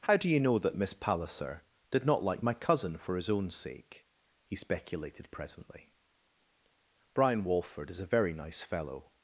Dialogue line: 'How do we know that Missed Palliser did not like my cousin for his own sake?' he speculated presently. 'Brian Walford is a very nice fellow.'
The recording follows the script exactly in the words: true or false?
false